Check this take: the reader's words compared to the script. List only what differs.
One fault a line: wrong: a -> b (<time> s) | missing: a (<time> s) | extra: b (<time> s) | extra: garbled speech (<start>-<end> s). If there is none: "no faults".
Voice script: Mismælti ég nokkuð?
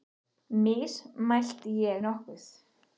no faults